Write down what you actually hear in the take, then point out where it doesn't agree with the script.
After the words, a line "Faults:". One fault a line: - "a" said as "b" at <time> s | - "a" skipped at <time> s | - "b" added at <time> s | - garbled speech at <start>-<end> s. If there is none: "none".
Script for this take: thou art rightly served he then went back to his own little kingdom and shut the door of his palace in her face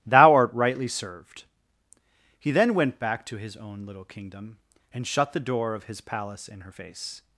thou art rightly served he then went back to his own little kingdom and shut the door of his palace in her face
Faults:
none